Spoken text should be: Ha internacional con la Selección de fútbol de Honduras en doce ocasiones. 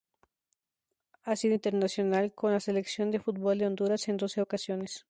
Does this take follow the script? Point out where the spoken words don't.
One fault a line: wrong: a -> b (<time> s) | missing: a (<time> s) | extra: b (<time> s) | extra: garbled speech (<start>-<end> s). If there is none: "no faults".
extra: sido (1.4 s)